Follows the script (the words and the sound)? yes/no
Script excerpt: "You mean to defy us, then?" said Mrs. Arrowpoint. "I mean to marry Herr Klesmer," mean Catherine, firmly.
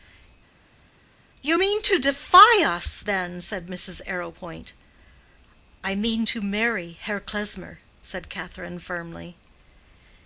no